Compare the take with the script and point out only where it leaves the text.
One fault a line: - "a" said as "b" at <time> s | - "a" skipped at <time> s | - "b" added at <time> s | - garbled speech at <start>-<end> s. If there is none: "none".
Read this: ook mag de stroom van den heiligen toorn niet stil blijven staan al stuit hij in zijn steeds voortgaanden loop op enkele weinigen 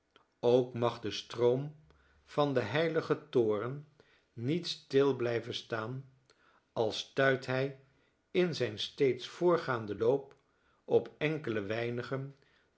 none